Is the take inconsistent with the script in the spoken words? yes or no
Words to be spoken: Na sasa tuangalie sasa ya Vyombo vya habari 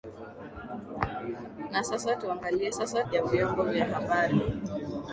no